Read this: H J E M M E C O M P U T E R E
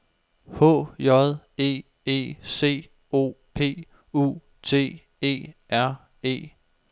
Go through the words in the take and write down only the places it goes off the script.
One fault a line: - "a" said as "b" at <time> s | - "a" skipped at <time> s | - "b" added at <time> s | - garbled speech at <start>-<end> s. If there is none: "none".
- "M M" skipped at 1.8 s
- "M" skipped at 3.3 s